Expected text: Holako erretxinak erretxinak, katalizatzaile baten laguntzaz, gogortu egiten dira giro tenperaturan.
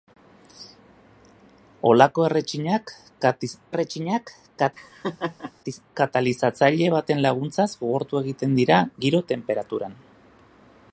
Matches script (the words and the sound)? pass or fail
fail